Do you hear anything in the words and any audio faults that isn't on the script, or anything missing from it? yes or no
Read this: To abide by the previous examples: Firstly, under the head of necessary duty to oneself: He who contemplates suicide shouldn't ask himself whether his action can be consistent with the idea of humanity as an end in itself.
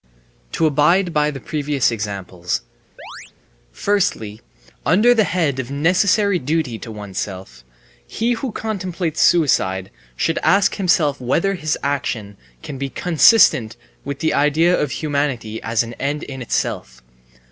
yes